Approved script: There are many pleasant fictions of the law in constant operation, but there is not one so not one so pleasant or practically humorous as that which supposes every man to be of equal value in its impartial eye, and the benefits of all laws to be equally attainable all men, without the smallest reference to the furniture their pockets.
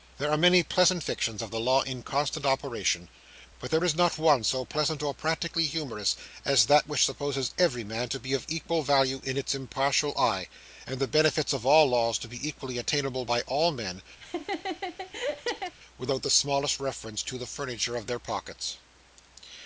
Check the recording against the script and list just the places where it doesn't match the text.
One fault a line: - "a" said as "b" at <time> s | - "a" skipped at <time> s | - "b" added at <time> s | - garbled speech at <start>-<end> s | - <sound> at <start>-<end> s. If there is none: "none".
- "not one so" skipped at 4.7 s
- "by" added at 13.2 s
- laugh at 14.2-15.7 s
- "of" added at 18.0 s